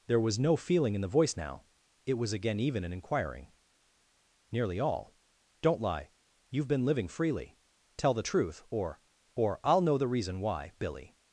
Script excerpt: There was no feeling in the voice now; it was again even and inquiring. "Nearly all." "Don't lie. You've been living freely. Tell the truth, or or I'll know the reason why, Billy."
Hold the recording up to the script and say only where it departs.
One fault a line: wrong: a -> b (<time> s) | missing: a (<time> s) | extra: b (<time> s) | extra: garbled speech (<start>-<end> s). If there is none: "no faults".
no faults